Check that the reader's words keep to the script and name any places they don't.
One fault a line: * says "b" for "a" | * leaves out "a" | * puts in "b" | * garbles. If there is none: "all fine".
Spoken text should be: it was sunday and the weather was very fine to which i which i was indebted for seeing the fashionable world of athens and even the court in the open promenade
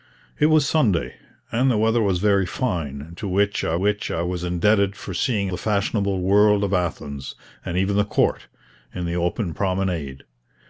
all fine